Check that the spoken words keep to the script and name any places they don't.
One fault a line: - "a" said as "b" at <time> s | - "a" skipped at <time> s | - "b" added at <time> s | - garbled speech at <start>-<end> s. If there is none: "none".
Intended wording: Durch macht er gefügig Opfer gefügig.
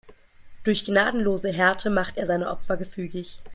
- "gnadenlose Härte" added at 0.8 s
- "gefügig" said as "seine" at 2.3 s